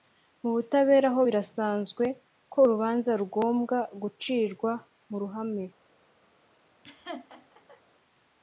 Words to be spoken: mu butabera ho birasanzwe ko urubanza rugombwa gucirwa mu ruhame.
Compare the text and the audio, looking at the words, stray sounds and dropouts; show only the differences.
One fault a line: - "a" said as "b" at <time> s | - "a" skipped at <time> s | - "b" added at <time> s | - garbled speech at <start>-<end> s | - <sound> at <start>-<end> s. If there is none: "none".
- laugh at 6.8-7.8 s